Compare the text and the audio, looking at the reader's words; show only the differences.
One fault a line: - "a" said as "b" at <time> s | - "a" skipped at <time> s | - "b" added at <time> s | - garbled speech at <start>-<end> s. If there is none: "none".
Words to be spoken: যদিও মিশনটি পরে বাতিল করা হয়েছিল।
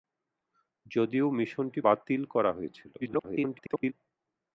- "পরে" skipped at 1.8 s
- garbled speech at 3.0-3.9 s